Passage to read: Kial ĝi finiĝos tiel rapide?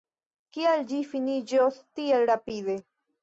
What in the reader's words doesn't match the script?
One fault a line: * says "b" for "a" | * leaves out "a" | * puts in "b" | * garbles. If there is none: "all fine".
all fine